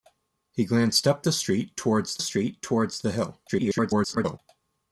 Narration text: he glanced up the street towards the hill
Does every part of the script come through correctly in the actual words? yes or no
no